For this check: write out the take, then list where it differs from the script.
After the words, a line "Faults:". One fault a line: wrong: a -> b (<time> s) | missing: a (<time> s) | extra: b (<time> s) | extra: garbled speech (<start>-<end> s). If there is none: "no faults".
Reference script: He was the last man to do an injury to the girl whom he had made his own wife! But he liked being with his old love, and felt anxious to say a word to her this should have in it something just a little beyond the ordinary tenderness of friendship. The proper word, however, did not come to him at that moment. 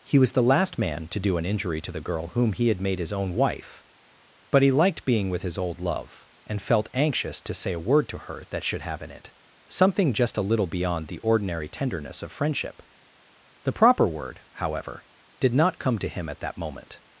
He was the last man to do an injury to the girl whom he had made his own wife! But he liked being with his old love, and felt anxious to say a word to her that should have in it something just a little beyond the ordinary tenderness of friendship. The proper word, however, did not come to him at that moment.
Faults:
wrong: this -> that (8.5 s)